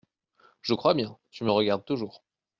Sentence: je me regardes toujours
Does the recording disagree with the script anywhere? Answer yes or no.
yes